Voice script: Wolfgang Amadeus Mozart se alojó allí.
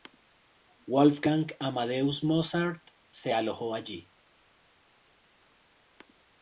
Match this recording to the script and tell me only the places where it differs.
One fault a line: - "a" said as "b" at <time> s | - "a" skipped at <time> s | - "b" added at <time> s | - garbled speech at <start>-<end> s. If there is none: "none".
none